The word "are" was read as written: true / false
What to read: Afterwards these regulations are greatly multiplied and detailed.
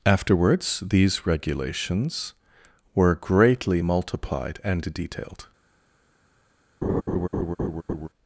false